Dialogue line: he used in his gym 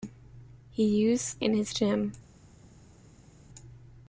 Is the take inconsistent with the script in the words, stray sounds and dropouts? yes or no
no